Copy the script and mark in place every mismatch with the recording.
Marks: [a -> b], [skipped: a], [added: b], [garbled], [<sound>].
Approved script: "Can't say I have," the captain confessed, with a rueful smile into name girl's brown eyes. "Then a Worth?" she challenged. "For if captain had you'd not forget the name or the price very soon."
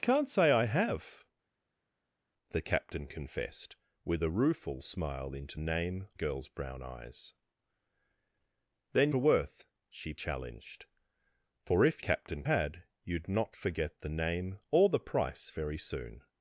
"Can't say I have," the captain confessed, with a rueful smile into name girl's brown eyes. "Then a Worth?" she challenged. "For if captain had you'd not forget the name or the price very soon."